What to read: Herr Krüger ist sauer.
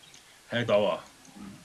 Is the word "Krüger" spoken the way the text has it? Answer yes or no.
no